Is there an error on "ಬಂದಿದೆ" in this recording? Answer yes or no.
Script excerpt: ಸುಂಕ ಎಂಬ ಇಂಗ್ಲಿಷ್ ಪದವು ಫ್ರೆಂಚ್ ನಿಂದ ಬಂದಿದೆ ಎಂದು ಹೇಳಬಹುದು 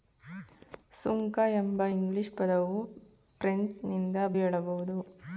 yes